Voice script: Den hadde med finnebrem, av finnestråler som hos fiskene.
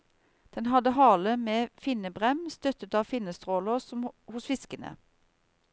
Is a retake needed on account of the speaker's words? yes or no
yes